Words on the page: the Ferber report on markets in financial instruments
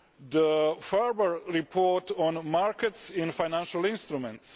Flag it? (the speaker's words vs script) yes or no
no